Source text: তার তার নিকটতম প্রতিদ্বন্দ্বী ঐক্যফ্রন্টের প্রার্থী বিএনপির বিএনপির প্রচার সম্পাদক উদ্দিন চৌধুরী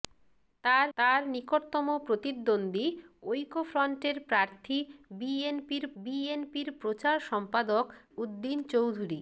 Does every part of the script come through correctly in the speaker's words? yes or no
yes